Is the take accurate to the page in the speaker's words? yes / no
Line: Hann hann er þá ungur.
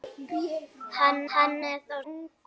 yes